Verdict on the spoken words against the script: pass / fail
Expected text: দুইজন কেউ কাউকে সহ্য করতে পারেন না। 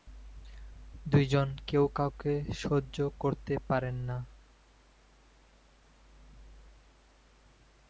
pass